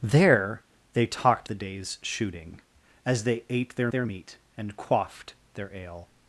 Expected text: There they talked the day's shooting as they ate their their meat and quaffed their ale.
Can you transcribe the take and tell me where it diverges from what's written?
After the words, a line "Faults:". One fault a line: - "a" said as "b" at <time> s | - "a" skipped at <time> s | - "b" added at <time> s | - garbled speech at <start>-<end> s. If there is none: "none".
There they talked the day's shooting as they ate their their meat and quaffed their ale.
Faults:
none